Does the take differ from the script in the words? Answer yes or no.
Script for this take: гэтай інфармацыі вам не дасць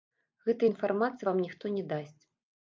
yes